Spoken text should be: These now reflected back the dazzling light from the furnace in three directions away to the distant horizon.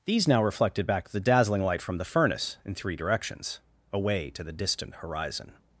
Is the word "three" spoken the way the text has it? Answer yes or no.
yes